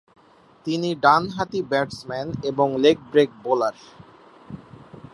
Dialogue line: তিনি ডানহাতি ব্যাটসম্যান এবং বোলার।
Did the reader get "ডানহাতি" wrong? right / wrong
right